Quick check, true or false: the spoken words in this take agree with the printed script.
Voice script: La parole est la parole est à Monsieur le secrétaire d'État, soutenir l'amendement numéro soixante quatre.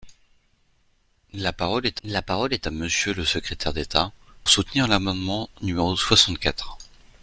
true